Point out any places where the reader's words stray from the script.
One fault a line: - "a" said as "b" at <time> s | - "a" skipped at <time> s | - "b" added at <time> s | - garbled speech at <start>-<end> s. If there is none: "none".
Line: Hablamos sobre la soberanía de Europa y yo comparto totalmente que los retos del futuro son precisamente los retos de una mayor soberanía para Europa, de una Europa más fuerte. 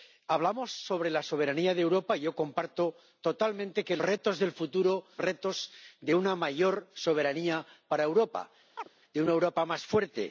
- "los" skipped at 4.0 s
- "son precisamente los" skipped at 5.1 s